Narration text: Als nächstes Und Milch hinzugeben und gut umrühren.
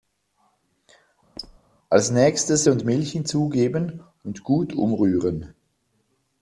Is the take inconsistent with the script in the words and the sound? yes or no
yes